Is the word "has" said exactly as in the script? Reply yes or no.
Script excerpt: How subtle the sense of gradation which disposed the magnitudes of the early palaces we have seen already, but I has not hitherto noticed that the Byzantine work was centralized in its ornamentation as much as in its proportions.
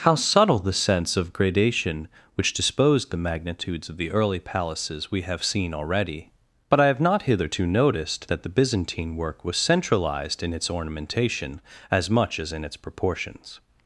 no